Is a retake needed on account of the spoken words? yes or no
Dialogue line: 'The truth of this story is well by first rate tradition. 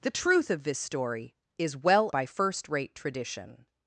no